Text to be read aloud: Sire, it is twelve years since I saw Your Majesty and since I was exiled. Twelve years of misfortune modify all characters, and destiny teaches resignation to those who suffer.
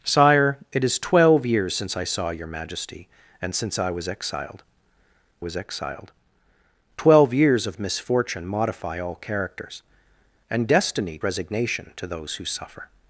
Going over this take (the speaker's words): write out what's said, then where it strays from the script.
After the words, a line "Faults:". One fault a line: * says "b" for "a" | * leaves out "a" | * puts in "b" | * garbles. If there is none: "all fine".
Sire, it is twelve years since I saw Your Majesty and since I was exiled was exiled. Twelve years of misfortune modify all characters, and destiny resignation to those who suffer.
Faults:
* puts in "was exiled"
* leaves out "teaches"